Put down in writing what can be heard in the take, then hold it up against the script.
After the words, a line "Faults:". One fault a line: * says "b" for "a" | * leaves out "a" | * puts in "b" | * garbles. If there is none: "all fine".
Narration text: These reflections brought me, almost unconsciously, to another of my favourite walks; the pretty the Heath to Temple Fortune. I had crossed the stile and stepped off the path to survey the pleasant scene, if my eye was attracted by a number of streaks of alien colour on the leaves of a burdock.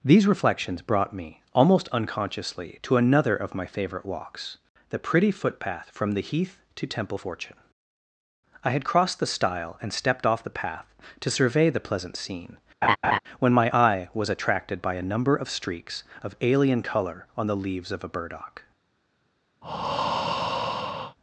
These reflections brought me, almost unconsciously, to another of my favourite walks; the pretty footpath from the Heath to Temple Fortune. I had crossed the stile and stepped off the path to survey the pleasant scene, when my eye was attracted by a number of streaks of alien colour on the leaves of a burdock.
Faults:
* puts in "footpath from"
* says "when" for "if"